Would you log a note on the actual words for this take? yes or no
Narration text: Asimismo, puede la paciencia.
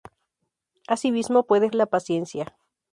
no